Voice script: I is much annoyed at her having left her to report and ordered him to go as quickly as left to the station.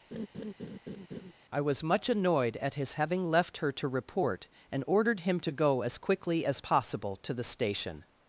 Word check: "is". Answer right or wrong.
wrong